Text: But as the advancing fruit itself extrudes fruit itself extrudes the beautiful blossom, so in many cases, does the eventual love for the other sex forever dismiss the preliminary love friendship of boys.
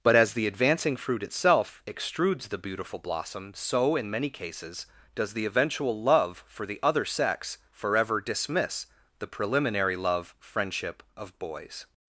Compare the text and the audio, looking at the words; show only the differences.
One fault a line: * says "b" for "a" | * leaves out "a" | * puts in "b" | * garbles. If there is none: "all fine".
* leaves out "fruit itself extrudes"